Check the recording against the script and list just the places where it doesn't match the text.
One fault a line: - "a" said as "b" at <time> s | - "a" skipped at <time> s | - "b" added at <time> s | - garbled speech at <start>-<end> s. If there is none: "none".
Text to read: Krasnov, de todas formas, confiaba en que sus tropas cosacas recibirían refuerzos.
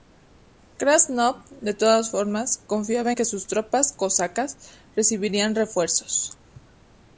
- "en" skipped at 3.1 s